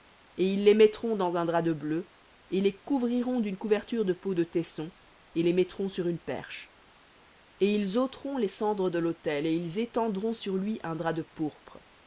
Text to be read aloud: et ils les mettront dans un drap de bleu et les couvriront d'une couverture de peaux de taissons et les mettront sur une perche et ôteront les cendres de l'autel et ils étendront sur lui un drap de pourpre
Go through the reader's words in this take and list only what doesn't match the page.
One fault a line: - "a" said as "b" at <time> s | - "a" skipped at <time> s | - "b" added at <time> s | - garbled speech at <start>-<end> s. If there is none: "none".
- "ils" added at 7.8 s